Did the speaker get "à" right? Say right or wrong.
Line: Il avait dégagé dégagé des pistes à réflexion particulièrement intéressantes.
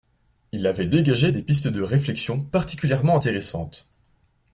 wrong